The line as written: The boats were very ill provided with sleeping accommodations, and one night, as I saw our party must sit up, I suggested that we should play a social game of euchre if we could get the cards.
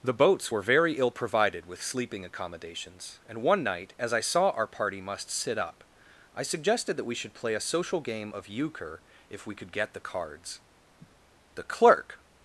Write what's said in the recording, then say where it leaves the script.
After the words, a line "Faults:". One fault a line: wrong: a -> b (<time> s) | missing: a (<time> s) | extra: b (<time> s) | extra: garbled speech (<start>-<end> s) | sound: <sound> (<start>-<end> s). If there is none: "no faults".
The boats were very ill provided with sleeping accommodations, and one night, as I saw our party must sit up, I suggested that we should play a social game of euchre if we could get the cards. The clerk
Faults:
sound: sniff (11.0-11.2 s)
extra: The clerk (11.6 s)